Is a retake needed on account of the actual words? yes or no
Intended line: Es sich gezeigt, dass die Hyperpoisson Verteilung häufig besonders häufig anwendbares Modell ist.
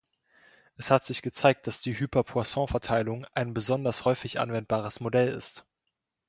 yes